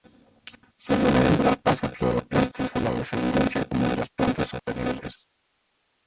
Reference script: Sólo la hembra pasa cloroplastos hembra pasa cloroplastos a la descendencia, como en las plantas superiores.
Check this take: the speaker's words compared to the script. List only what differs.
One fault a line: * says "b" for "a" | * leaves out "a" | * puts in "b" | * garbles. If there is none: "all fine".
* leaves out "hembra pasa cloroplastos"